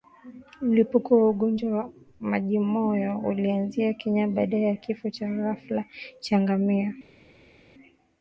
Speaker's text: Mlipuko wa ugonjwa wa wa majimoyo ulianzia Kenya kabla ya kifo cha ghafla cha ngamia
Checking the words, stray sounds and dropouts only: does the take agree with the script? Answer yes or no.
no